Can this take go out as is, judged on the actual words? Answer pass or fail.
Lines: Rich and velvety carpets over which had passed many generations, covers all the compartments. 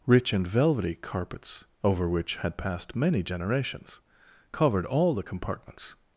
fail